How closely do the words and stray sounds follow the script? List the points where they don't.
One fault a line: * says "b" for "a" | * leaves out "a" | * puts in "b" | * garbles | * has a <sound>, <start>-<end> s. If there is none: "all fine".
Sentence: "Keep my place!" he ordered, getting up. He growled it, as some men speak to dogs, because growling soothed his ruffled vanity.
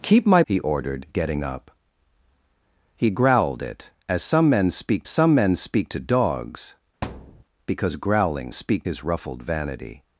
* leaves out "place"
* puts in "some men speak"
* has a thud, 7.0-7.4 s
* says "speak" for "soothed"